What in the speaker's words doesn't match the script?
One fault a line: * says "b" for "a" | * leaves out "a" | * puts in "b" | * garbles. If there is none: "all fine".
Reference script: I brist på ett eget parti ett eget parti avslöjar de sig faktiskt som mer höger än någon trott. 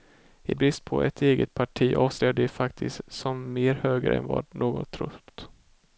* leaves out "ett eget parti"
* puts in "vad"